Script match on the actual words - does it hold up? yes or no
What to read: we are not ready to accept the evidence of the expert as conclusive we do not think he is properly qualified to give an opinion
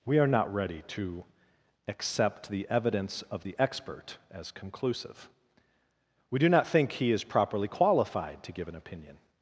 yes